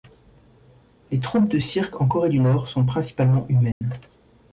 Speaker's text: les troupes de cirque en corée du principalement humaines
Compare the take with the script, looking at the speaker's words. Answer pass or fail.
fail